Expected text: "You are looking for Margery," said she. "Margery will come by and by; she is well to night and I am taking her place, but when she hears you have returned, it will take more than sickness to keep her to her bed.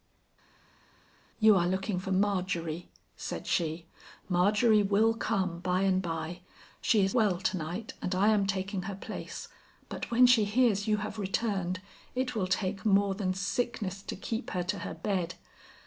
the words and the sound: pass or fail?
pass